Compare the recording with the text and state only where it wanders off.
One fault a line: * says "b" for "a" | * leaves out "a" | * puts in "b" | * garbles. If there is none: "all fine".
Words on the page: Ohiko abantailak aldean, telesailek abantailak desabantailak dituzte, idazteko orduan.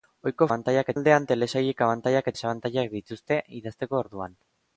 all fine